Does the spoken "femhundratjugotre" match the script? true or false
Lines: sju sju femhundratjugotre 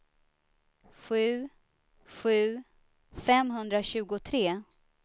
true